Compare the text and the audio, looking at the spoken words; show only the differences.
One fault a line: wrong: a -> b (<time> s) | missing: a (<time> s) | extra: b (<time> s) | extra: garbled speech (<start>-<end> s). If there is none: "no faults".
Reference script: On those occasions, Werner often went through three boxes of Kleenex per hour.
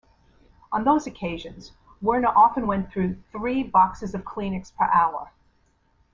no faults